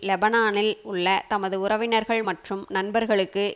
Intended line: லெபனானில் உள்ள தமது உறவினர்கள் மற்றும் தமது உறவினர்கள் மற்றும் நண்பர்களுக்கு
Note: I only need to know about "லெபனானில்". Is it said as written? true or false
true